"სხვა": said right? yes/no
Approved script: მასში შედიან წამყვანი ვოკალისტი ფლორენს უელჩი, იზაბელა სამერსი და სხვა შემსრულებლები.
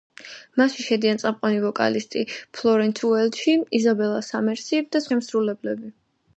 no